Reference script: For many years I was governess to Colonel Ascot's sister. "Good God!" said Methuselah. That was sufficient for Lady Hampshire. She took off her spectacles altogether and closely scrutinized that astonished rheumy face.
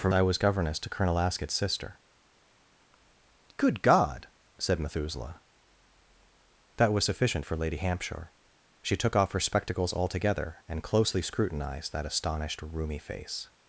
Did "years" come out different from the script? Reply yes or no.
yes